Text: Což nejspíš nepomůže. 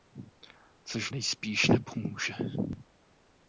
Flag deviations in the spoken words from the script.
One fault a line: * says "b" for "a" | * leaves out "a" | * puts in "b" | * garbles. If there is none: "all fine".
all fine